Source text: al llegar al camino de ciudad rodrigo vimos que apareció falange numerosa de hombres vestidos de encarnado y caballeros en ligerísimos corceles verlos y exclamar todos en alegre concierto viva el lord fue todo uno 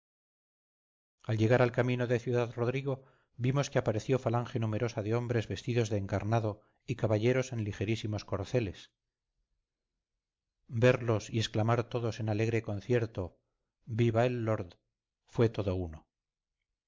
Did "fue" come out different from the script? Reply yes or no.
no